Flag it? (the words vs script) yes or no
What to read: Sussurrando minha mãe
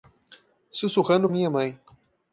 no